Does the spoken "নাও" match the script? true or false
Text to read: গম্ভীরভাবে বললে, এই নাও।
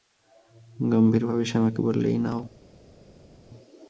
true